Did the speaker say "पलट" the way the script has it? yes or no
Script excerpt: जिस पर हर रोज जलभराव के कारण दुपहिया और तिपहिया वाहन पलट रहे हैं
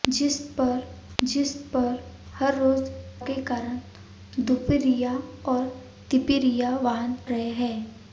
no